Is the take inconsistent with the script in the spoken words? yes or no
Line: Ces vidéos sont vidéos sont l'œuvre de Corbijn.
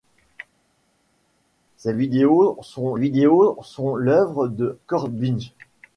no